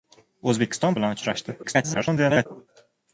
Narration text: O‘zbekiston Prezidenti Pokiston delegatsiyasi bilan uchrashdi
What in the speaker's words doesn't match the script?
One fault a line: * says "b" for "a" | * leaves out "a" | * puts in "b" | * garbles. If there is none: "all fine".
* leaves out "Prezidenti Pokiston delegatsiyasi"
* garbles